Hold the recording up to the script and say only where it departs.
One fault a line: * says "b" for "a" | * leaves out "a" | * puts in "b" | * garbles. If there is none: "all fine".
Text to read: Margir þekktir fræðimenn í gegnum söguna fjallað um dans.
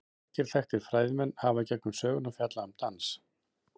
* puts in "hafa"